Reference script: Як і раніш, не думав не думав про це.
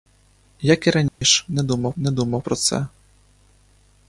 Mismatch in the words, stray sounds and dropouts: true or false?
true